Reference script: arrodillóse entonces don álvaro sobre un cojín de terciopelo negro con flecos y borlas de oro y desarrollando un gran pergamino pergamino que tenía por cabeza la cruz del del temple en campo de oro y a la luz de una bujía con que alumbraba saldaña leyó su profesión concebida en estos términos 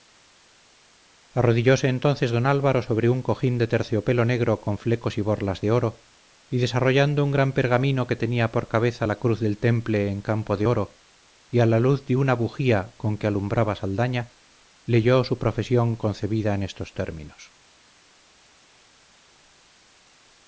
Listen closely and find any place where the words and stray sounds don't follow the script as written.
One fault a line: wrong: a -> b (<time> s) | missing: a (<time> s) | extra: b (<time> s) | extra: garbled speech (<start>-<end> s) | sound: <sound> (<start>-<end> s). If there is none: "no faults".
missing: pergamino (8.1 s)
missing: del (9.6 s)